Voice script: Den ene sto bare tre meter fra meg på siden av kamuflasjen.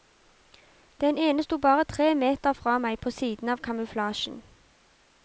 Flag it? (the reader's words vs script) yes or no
no